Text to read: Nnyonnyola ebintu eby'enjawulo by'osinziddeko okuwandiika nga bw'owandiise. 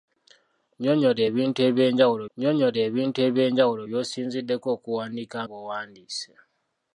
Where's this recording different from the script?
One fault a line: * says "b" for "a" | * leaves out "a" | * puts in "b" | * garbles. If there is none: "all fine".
* puts in "nnyonnyola ebintu eby'enjawulo"
* leaves out "nga"